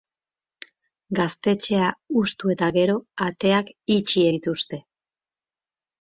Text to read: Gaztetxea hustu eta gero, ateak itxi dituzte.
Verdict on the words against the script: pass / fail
pass